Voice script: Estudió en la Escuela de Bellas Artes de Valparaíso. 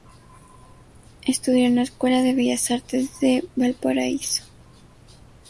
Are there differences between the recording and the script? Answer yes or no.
no